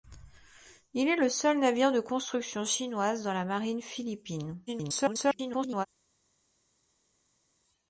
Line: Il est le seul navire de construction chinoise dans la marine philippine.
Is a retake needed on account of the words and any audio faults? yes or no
yes